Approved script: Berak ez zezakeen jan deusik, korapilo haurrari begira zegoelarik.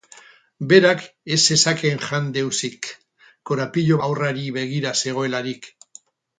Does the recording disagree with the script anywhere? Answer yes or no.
no